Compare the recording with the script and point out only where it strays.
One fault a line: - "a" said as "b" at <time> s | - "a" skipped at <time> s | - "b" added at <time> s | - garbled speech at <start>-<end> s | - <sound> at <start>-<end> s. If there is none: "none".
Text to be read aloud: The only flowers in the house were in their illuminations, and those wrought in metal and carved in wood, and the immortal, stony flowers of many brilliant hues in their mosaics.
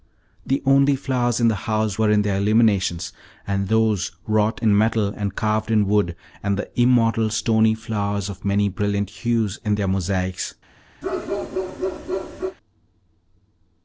- bark at 11.0-12.6 s